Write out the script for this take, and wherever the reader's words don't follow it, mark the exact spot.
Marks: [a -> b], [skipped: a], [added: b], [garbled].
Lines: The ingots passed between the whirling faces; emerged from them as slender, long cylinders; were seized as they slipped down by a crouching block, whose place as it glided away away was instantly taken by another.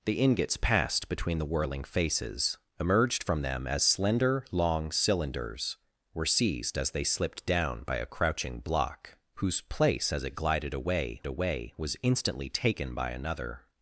The ingots passed between the whirling faces; emerged from them as slender, long cylinders; were seized as they slipped down by a crouching block, whose place as it glided away away was instantly taken by another.